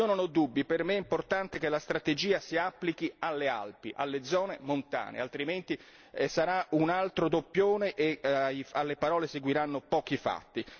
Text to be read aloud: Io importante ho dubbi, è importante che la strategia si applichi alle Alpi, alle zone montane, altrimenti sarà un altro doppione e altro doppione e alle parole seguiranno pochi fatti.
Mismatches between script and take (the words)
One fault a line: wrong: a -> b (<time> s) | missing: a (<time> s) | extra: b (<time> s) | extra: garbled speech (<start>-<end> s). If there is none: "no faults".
wrong: importante -> non (0.1 s)
extra: per me (0.7 s)
missing: altro doppione e (8.2 s)